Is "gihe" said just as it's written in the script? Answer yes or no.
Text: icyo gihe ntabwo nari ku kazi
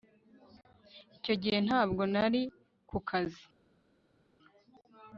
yes